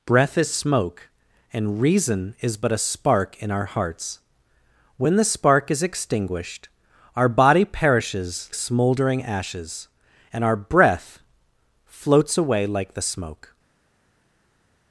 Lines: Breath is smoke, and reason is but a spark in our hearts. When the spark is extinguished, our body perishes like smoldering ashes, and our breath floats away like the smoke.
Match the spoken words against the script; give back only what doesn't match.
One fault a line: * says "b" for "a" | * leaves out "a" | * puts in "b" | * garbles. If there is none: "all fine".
* leaves out "like"